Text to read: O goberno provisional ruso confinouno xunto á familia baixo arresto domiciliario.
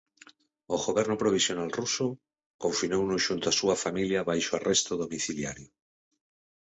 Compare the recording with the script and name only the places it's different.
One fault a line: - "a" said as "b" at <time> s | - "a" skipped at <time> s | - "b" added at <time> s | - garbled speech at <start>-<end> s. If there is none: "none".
- "súa" added at 3.6 s